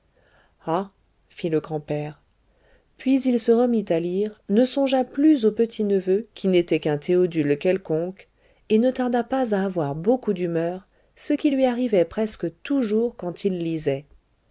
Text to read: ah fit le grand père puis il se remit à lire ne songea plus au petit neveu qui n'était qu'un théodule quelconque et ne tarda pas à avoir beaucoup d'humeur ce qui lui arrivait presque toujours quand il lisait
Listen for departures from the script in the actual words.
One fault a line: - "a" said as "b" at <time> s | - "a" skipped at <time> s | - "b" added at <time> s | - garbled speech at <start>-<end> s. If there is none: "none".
none